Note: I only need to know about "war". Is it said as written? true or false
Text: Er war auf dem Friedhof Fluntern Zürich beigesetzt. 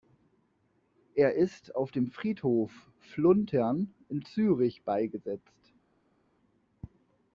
false